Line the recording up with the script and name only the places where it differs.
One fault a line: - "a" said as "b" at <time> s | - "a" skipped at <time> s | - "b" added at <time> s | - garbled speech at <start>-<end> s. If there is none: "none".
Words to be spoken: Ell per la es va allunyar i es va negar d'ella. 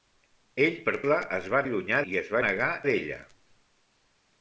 none